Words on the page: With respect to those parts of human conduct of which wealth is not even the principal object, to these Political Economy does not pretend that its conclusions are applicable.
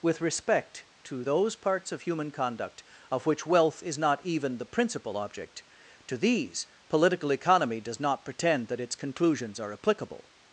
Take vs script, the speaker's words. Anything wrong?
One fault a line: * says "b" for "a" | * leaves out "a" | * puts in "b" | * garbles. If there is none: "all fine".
all fine